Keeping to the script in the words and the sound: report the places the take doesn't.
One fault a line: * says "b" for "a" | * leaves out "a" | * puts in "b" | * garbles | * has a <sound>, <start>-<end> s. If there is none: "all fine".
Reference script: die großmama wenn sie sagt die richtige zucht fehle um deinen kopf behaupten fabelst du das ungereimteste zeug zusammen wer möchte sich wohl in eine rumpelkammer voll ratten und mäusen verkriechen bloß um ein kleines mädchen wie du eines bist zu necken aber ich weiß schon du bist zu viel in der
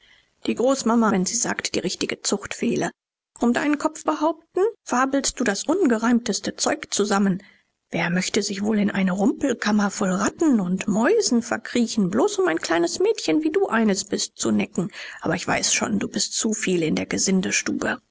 all fine